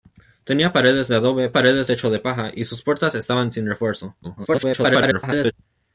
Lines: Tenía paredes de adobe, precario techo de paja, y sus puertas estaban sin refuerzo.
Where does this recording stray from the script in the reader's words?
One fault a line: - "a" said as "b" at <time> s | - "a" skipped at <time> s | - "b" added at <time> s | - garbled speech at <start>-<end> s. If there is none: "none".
- "precario" said as "paredes" at 1.5 s
- garbled speech at 4.2-5.5 s